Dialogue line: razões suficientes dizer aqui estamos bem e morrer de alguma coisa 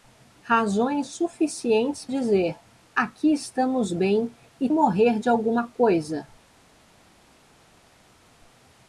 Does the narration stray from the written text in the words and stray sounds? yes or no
no